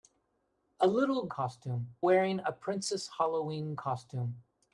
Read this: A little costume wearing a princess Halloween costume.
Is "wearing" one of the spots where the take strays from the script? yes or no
no